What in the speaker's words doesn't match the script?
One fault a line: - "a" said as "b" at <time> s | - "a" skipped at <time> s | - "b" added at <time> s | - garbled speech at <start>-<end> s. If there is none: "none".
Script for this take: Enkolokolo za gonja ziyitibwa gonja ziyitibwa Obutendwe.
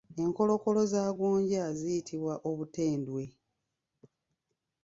- "gonja ziyitibwa" skipped at 2.3 s